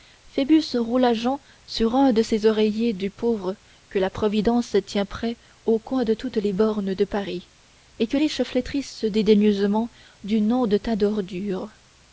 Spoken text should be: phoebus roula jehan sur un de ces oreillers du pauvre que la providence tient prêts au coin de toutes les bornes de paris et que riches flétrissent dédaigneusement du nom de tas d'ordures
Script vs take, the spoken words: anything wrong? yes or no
no